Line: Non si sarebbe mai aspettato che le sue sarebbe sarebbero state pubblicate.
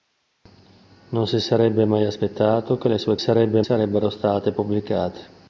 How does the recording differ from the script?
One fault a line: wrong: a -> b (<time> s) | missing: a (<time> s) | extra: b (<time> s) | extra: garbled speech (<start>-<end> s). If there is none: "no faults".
no faults